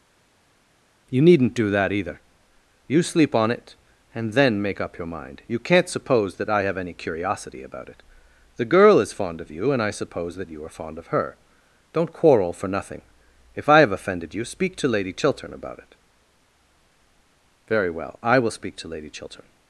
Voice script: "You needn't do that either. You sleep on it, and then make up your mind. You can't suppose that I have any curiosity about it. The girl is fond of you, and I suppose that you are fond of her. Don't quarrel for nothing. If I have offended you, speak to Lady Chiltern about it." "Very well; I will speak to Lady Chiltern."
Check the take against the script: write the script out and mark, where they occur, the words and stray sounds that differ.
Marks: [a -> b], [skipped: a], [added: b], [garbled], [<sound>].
"You needn't do that either. You sleep on it, and then make up your mind. You can't suppose that I have any curiosity about it. The girl is fond of you, and I suppose that you are fond of her. Don't quarrel for nothing. If I have offended you, speak to Lady Chiltern about it." "Very well; I will speak to Lady Chiltern."